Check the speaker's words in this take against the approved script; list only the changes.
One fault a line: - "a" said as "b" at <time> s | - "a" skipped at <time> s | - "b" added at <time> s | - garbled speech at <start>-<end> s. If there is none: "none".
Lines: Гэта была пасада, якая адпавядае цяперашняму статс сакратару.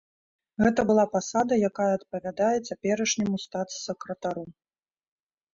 none